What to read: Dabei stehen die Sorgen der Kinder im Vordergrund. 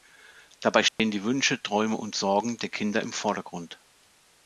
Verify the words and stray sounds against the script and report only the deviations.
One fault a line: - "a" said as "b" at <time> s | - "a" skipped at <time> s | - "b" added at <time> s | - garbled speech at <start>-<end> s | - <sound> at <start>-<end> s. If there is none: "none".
- dropout at 0.9-1.0 s
- "Wünsche Träume und" added at 1.2 s